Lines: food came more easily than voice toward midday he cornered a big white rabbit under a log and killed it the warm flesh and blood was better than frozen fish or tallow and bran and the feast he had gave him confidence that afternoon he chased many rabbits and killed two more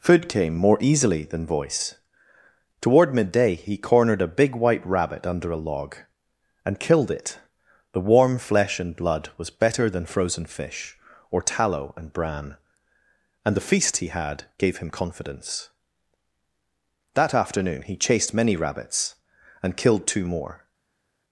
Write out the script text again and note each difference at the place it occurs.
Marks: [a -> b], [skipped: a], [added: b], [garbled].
food came more easily than voice toward midday he cornered a big white rabbit under a log and killed it the warm flesh and blood was better than frozen fish or tallow and bran and the feast he had gave him confidence that afternoon he chased many rabbits and killed two more